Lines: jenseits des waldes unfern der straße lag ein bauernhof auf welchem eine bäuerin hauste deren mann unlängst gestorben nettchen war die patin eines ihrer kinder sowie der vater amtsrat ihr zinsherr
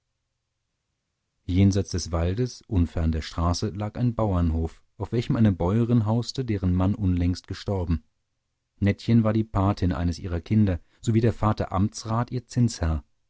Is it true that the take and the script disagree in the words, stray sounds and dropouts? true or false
false